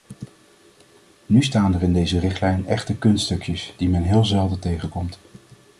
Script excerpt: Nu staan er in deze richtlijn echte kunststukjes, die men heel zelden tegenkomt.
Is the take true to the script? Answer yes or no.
yes